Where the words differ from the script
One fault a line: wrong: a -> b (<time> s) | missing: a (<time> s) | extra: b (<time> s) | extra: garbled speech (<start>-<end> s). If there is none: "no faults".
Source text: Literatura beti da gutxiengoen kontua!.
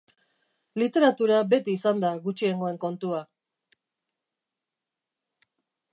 extra: izan (1.8 s)